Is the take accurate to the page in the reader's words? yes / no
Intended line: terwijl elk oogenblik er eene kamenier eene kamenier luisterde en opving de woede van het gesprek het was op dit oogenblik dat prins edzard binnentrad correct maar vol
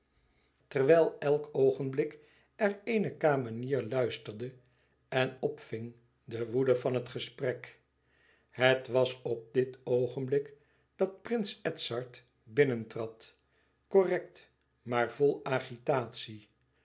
no